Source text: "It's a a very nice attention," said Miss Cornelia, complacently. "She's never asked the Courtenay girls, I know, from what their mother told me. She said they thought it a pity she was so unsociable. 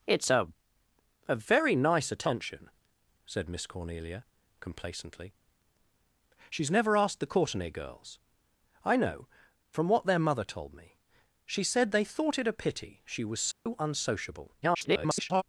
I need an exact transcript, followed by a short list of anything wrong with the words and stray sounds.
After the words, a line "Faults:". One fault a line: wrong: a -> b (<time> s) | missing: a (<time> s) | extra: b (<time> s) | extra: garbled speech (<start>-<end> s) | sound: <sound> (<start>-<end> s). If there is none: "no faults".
"It's a a very nice attention," said Miss Cornelia, complacently. "She's never asked the Courtenay girls, I know, from what their mother told me. She said they thought it a pity she was so unsociable. [garbled]
Faults:
sound: dropout (13.5-13.7 s)
extra: garbled speech (14.6-15.4 s)